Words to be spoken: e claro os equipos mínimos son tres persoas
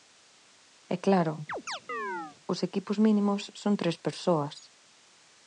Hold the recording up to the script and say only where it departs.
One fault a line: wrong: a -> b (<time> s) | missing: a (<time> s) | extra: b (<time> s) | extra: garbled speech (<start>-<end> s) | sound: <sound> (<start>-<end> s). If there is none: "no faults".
sound: chirp (1.5-2.4 s)